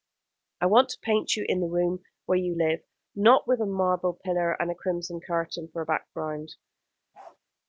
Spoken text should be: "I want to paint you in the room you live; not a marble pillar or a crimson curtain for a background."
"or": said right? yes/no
no